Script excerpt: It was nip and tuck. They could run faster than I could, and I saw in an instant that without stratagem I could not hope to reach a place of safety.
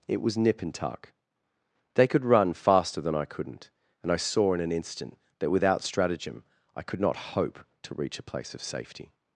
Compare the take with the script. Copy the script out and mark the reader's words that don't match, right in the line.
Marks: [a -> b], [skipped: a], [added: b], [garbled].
It was nip and tuck. They could run faster than I [could, -> couldn't] and I saw in an instant that without stratagem I could not hope to reach a place of safety.